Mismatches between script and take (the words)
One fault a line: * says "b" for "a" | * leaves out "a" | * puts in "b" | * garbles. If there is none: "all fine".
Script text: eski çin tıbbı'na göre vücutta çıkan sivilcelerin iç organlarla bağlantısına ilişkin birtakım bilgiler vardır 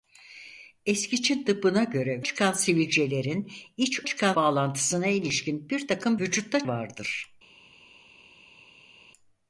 * leaves out "vücutta"
* says "çıkan" for "organlarla"
* says "vücutta" for "bilgiler"